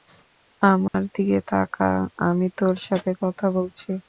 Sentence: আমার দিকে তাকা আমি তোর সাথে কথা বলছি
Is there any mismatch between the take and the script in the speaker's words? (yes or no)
no